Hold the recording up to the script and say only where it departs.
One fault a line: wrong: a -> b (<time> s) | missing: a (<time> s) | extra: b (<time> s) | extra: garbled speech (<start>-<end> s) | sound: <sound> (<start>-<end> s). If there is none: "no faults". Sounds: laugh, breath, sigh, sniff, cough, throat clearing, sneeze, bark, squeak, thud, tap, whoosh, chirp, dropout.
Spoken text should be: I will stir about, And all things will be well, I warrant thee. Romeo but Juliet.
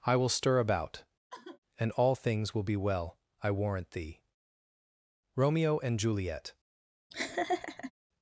sound: sigh (1.3-1.6 s)
wrong: but -> and (5.8 s)
sound: laugh (7.1-7.9 s)